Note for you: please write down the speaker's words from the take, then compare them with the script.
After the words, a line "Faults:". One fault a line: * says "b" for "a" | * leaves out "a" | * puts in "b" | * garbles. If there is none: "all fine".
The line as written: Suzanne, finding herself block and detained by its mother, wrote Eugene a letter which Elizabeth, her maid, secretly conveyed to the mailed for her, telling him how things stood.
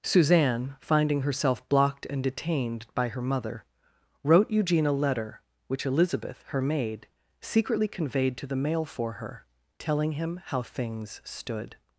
Suzanne, finding herself blocked and detained by her mother, wrote Eugene a letter which Elizabeth, her maid, secretly conveyed to the mail for her, telling him how things stood.
Faults:
* says "blocked" for "block"
* says "her" for "its"
* says "mail" for "mailed"